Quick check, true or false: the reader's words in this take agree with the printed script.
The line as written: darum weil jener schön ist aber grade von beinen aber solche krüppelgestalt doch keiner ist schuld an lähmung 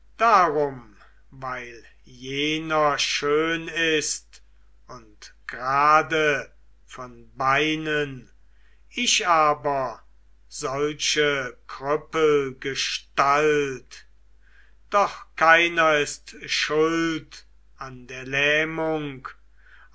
false